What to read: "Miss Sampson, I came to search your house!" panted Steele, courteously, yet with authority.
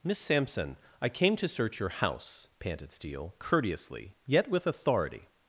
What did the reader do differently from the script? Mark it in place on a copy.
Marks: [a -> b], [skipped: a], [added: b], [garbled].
"Miss Sampson, I came to search your house!" panted Steele, courteously, yet with authority.